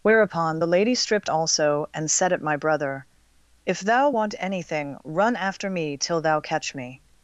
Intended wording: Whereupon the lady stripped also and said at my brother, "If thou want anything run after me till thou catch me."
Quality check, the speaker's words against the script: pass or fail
pass